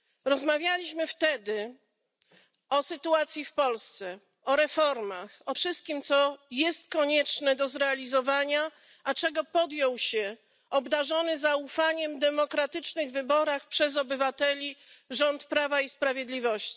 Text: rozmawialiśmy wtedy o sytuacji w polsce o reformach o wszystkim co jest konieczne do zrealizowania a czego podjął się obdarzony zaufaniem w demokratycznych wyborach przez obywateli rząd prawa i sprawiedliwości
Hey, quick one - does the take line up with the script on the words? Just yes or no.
yes